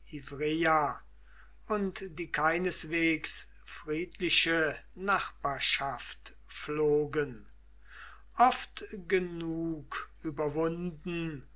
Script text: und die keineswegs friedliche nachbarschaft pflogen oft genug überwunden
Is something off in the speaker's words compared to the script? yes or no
no